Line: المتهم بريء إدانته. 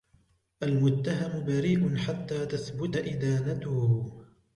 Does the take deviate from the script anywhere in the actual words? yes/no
yes